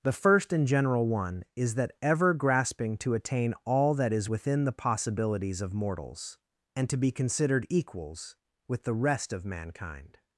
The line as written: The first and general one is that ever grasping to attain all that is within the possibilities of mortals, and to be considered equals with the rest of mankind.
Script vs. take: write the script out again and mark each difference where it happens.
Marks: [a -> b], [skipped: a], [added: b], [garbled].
The first and general one is that ever grasping to attain all that is within the possibilities of mortals, and to be considered equals with the rest of mankind.